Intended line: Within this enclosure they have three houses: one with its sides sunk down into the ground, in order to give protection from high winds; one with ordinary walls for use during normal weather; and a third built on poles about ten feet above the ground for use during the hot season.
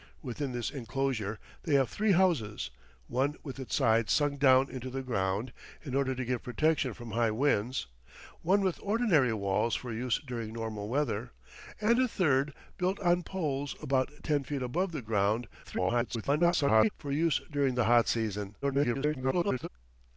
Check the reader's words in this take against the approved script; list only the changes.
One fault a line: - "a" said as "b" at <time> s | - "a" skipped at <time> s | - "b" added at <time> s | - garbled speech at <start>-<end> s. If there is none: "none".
- garbled speech at 15.6-16.9 s
- garbled speech at 18.6-19.7 s